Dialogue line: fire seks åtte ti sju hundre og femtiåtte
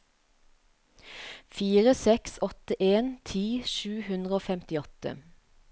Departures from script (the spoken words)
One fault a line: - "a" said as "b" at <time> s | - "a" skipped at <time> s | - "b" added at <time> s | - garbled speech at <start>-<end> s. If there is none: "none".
- "en" added at 2.9 s